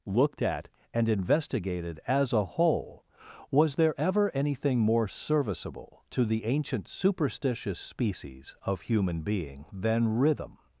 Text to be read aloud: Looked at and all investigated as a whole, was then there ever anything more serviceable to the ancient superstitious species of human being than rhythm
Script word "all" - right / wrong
wrong